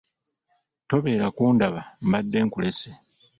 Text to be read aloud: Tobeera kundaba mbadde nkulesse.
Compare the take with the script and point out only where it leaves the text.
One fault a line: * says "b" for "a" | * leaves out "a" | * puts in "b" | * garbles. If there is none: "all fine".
all fine